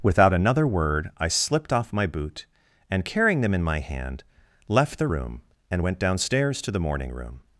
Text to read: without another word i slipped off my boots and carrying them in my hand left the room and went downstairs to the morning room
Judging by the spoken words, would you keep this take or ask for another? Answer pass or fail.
fail